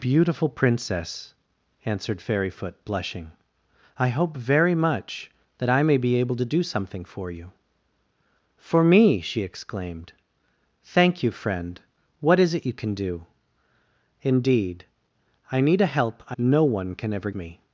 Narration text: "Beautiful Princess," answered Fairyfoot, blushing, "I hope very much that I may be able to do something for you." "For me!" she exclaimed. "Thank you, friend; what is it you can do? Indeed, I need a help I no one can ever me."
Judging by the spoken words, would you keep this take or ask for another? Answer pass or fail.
pass